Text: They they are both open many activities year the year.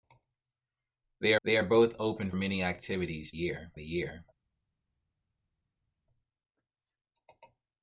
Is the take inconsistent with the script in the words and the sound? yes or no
no